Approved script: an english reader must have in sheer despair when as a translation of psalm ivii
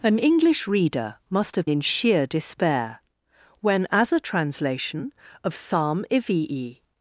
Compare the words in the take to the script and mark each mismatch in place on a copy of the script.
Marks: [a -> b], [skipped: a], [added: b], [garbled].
an english reader must have in sheer despair when as a translation of psalm ivii